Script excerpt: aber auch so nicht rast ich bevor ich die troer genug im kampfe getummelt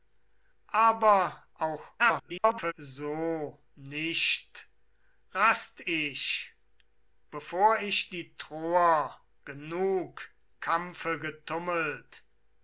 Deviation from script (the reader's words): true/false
true